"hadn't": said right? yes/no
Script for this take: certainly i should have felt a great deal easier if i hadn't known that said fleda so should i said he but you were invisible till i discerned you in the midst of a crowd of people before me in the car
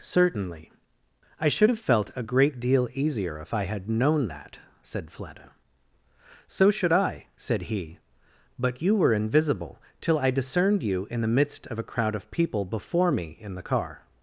no